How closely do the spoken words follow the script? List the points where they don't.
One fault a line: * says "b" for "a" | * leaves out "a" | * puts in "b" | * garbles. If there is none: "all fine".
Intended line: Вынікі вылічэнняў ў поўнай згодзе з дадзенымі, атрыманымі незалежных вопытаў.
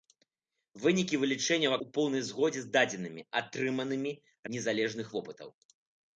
all fine